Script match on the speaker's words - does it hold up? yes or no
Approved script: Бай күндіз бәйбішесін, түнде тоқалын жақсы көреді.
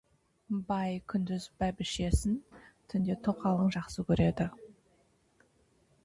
yes